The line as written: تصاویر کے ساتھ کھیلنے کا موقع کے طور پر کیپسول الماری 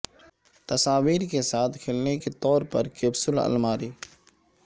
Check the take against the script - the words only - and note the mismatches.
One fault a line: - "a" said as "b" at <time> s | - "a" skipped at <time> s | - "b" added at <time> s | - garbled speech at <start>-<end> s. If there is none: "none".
- "کا موقع" skipped at 2.2 s